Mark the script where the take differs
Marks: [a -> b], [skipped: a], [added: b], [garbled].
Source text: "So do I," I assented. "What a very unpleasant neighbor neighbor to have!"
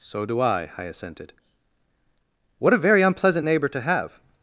"So do I," I assented. "What a very unpleasant neighbor [skipped: neighbor] to have!"